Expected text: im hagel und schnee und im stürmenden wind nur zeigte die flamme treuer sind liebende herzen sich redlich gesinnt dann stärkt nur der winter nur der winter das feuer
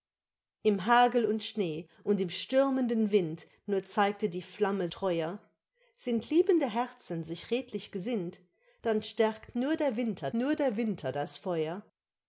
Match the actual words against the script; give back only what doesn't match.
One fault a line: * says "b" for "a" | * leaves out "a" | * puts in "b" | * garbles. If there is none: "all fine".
all fine